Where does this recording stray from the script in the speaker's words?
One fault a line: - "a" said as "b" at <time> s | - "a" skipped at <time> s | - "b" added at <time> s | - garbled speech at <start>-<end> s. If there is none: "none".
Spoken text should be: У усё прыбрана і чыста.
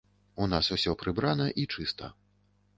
- "нас" added at 0.5 s